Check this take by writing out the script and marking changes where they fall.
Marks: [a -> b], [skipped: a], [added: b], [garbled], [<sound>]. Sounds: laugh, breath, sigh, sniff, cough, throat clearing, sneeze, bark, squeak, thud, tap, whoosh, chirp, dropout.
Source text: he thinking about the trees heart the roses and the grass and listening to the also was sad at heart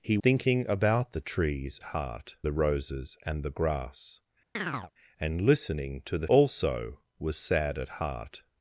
he thinking about the trees heart the roses and the grass [chirp] and listening to the also was sad at heart